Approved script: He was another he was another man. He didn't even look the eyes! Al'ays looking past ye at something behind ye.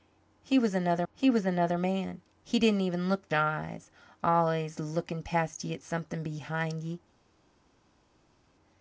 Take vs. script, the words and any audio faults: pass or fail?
pass